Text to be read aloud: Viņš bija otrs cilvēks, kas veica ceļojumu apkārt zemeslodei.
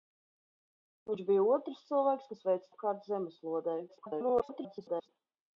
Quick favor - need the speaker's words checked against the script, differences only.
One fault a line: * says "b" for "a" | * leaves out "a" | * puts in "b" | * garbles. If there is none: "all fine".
* leaves out "ceļojumu"
* garbles